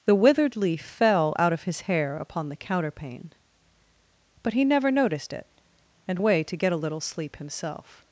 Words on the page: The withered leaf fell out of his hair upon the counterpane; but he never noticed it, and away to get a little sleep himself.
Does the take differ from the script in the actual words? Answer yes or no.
no